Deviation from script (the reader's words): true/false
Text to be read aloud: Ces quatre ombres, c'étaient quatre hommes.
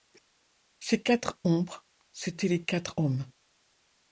true